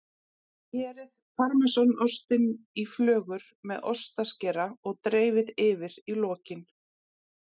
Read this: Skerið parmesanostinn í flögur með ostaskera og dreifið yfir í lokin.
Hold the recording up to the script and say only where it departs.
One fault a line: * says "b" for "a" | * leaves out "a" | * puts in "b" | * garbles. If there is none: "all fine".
all fine